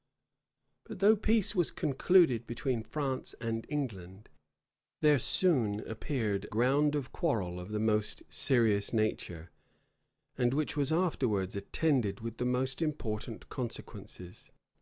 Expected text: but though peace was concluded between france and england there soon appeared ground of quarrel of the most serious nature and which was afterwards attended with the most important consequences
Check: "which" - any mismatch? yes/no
no